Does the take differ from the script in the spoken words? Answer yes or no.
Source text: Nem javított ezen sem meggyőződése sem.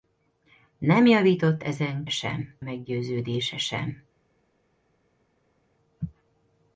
no